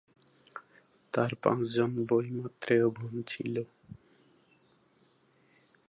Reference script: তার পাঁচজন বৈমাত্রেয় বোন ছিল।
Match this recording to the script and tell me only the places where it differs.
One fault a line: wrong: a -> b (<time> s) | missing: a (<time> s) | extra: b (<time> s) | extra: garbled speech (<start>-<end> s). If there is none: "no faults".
no faults